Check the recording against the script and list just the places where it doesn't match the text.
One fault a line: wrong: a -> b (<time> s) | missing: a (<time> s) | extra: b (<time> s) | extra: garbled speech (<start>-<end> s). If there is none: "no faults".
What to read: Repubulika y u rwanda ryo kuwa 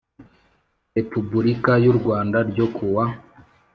no faults